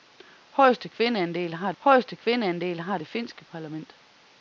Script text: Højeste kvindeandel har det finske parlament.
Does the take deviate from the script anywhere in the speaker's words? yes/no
yes